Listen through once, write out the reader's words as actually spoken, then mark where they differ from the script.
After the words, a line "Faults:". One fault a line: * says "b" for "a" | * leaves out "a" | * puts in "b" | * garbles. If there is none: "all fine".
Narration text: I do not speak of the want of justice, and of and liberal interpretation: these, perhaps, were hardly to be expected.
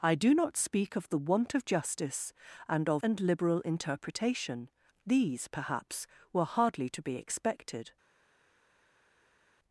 I do not speak of the want of justice, and of and liberal interpretation: these, perhaps, were hardly to be expected.
Faults:
all fine